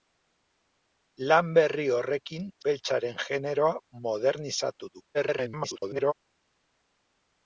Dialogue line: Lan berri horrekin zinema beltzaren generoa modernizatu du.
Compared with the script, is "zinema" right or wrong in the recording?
wrong